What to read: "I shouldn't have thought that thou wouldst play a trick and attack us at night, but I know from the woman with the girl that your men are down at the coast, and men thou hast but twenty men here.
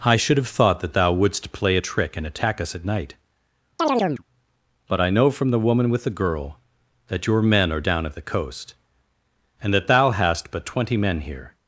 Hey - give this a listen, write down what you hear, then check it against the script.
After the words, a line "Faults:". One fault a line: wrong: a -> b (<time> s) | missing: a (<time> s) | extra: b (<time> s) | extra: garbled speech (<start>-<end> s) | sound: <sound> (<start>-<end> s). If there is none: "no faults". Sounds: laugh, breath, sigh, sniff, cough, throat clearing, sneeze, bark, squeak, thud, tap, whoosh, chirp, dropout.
"I should have thought that thou wouldst play a trick and attack us at night, but I know from the woman with the girl that your men are down at the coast, and that thou hast but twenty men here.
Faults:
wrong: shouldn't -> should (0.1 s)
sound: chirp (3.8-4.2 s)
wrong: men -> that (9.7 s)